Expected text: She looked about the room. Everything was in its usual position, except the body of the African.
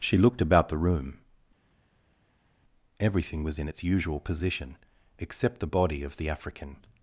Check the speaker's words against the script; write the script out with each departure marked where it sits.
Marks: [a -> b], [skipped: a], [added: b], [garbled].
She looked about the room. Everything was in its usual position, except the body of the African.